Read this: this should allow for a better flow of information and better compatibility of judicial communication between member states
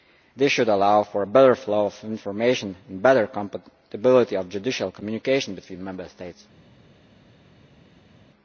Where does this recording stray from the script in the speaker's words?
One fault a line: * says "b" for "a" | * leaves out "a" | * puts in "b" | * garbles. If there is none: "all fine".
all fine